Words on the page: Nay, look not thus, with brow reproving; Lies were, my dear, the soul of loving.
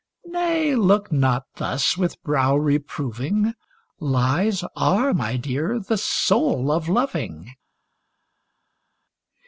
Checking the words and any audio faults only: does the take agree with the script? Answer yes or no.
no